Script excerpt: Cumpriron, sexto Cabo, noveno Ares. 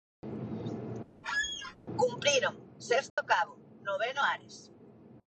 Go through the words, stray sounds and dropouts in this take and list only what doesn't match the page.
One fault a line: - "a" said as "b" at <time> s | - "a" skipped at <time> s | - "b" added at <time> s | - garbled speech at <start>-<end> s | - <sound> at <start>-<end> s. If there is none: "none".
- squeak at 1.2-1.8 s
- dropout at 3.1-3.2 s